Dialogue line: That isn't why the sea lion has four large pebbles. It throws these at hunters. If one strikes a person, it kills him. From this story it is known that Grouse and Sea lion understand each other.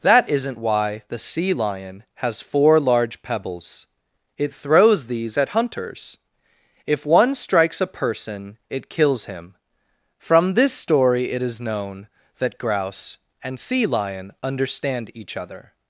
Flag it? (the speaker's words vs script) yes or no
no